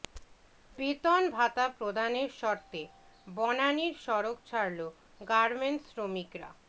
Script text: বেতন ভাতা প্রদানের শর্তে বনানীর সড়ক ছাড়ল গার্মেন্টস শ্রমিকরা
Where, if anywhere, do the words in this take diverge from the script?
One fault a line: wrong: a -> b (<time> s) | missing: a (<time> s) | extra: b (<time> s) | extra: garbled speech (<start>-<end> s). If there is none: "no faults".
no faults